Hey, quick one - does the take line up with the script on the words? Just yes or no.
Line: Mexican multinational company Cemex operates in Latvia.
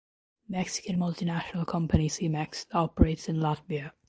yes